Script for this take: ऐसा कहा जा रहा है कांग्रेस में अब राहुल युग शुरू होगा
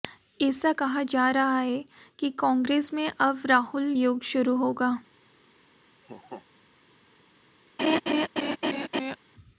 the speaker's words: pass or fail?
fail